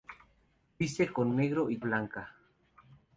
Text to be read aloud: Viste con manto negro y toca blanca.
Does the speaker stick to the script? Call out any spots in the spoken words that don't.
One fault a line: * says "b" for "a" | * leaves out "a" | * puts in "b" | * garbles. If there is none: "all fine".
* leaves out "manto"
* leaves out "toca"